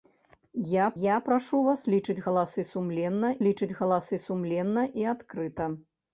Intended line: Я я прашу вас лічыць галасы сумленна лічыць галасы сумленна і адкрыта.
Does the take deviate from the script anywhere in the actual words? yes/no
no